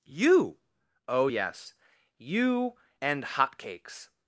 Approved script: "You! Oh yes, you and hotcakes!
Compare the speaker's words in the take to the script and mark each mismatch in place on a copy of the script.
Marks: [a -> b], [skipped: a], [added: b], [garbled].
"You! Oh yes, you and hotcakes!